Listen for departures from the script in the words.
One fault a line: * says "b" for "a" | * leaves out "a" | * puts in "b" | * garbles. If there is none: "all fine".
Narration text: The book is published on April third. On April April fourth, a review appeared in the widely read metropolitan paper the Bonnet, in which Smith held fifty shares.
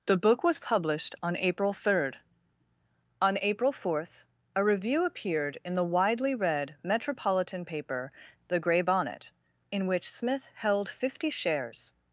* says "was" for "is"
* leaves out "April"
* puts in "Grey"